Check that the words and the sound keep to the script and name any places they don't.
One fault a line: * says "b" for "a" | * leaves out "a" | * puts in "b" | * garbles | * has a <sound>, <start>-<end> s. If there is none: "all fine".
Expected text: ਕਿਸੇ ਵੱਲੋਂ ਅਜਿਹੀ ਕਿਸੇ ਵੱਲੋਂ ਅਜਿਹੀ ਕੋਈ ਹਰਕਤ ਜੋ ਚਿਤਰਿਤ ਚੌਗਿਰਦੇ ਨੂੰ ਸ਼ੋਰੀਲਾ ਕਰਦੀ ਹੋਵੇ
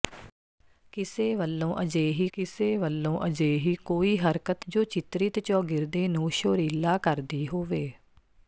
all fine